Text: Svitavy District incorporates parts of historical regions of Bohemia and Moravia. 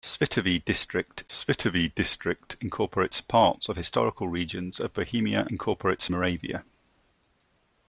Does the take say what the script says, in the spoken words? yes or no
no